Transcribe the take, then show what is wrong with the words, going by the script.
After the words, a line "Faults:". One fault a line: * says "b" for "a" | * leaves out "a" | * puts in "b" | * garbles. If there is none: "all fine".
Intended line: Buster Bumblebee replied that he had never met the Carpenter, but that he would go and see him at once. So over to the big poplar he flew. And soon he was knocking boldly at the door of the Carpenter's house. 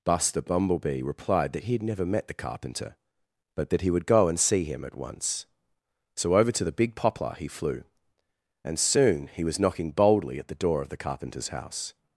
Buster Bumblebee replied that he had never met the Carpenter, but that he would go and see him at once. So over to the big poplar he flew. And soon he was knocking boldly at the door of the Carpenter's house.
Faults:
all fine